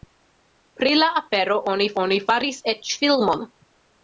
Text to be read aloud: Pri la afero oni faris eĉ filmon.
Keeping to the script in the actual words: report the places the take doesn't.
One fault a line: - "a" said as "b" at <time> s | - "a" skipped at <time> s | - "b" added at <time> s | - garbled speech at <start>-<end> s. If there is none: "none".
- "oni" added at 2.0 s